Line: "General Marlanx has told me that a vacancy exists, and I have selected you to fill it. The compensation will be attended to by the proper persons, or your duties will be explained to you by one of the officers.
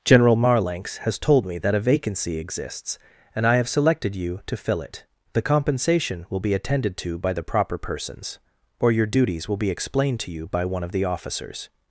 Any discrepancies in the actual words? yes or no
no